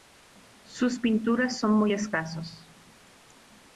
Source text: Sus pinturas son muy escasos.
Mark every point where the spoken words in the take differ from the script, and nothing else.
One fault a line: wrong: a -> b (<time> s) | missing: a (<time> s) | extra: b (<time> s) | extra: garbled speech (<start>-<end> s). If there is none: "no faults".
no faults